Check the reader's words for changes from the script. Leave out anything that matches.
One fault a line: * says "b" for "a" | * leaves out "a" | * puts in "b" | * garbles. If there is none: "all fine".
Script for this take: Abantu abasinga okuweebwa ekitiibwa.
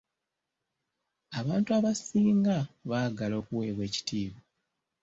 * puts in "baagala"